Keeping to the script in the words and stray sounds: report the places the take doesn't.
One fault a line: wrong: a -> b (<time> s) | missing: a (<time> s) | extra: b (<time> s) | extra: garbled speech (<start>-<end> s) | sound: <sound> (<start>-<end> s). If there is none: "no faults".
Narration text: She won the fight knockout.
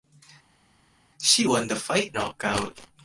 no faults